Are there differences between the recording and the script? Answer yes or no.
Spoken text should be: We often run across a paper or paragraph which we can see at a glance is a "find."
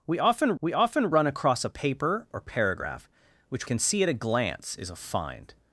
yes